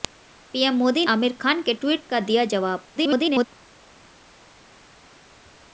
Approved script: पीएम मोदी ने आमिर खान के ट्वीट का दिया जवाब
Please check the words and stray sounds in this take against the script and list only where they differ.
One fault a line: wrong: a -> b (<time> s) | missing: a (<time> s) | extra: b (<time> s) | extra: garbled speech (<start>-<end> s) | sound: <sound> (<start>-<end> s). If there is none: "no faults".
missing: ने (1.1 s)
extra: garbled speech (3.0-3.5 s)